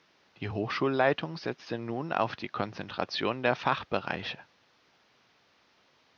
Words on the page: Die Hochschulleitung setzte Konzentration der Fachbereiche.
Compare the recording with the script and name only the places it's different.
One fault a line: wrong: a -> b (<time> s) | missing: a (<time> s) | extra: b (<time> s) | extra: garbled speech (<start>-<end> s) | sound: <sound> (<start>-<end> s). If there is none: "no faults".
extra: nun auf die (1.8 s)